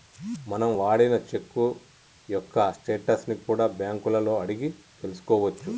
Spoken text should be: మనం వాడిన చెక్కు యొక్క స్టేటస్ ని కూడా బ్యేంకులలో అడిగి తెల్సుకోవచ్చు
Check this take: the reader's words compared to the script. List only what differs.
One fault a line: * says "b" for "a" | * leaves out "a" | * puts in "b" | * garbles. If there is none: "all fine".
all fine